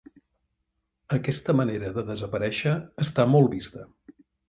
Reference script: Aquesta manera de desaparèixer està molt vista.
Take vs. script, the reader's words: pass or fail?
pass